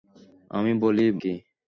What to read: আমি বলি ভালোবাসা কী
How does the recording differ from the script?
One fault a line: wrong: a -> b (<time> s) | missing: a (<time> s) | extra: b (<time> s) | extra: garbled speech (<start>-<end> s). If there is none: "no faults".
missing: ভালোবাসা (1.1 s)